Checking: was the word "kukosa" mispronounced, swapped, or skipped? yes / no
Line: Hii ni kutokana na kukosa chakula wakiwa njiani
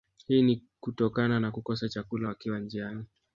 no